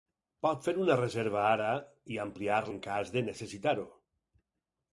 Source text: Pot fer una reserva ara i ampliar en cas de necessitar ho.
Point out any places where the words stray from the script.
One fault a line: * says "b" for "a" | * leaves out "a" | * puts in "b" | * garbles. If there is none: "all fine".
all fine